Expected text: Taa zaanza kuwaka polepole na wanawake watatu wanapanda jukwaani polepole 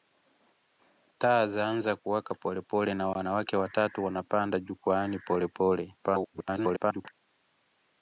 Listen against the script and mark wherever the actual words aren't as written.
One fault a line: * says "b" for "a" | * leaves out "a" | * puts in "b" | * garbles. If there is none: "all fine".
* garbles